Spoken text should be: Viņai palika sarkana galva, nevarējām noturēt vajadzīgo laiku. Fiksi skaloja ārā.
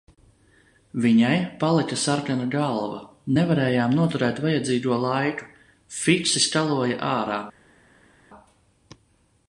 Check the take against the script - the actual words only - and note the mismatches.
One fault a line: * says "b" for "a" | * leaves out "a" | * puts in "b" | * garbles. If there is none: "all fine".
all fine